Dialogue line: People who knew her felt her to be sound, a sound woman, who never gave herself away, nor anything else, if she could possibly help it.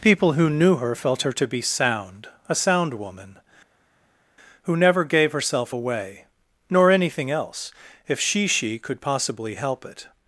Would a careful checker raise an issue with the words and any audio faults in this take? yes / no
yes